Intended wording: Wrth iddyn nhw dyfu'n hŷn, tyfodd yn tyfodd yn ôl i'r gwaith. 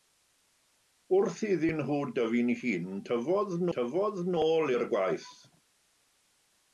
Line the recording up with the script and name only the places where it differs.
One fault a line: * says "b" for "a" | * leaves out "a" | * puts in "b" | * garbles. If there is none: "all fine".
all fine